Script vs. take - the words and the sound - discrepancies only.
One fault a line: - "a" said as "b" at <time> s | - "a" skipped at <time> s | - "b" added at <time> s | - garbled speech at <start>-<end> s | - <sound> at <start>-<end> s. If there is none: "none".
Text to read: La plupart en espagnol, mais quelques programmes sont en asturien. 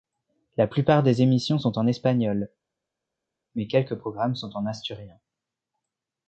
- "des émissions sont" added at 1.0 s